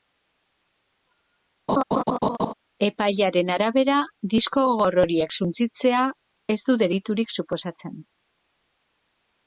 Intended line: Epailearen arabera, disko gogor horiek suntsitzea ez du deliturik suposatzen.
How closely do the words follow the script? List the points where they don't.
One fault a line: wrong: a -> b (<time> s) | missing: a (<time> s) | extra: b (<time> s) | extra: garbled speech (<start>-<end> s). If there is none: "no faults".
no faults